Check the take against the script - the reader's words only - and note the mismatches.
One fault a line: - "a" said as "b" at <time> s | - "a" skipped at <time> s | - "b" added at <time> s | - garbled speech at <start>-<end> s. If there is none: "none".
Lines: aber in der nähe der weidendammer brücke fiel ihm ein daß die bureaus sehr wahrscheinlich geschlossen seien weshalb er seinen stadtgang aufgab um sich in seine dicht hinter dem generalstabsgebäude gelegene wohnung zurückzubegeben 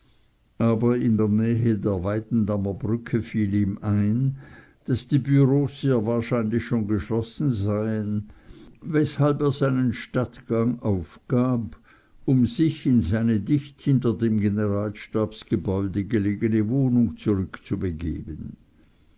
- "schon" added at 6.6 s